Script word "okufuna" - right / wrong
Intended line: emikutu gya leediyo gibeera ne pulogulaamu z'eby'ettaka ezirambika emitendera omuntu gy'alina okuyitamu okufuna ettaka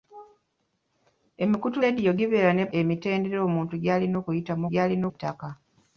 wrong